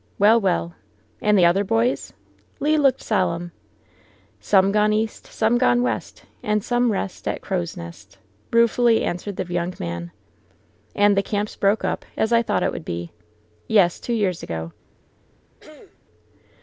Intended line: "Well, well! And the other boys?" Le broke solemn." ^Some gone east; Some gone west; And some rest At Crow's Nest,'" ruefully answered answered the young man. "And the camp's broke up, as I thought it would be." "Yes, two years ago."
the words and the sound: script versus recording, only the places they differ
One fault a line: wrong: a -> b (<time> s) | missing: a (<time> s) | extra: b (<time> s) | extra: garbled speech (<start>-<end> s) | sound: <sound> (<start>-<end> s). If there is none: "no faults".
wrong: broke -> looked (2.8 s)
missing: answered (9.4 s)
sound: throat clearing (15.6-16.0 s)